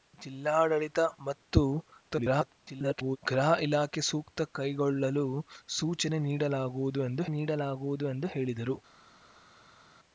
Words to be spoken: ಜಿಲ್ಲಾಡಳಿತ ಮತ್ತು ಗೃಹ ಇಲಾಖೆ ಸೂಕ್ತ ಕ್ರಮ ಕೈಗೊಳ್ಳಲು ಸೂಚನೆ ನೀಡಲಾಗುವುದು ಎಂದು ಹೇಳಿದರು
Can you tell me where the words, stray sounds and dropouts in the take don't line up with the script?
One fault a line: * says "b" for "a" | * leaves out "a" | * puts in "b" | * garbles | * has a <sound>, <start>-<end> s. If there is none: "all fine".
* garbles
* leaves out "ಕ್ರಮ"
* puts in "ನೀಡಲಾಗುವುದು ಎಂದು"